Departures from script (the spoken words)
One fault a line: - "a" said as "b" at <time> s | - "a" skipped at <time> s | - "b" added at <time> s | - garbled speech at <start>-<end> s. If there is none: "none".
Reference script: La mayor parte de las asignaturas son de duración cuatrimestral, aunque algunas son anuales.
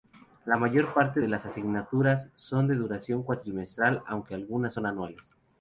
none